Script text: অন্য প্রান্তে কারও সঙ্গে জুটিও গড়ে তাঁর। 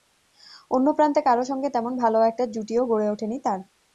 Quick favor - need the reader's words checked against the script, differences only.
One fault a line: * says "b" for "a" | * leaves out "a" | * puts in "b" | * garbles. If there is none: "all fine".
* puts in "তেমন ভালো একটা"
* puts in "ওঠেনি"